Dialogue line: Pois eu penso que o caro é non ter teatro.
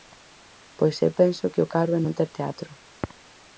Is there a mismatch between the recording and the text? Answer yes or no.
no